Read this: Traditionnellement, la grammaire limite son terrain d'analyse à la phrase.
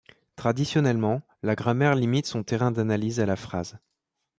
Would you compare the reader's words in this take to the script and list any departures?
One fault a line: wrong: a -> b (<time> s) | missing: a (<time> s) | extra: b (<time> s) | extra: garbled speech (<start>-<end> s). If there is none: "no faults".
no faults